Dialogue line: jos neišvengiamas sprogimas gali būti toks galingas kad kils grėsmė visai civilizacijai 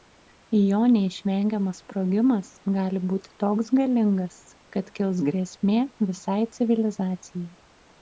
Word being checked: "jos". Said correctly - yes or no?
no